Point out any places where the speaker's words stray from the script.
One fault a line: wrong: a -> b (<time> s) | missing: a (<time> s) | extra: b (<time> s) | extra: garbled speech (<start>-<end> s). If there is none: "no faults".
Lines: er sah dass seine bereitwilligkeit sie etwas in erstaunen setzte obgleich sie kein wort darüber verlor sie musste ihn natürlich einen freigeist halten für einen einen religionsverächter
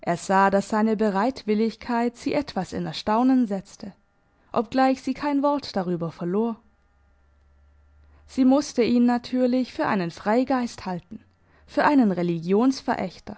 extra: für (9.7 s)
missing: einen (12.1 s)